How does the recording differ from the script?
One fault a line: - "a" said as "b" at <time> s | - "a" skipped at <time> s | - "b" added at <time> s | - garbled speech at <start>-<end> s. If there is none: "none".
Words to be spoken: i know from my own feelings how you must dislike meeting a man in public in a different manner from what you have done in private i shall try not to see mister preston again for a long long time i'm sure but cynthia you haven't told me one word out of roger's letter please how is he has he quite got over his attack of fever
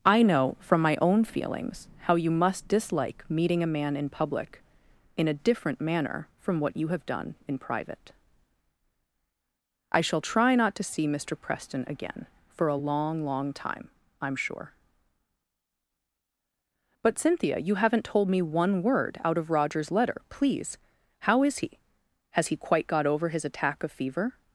none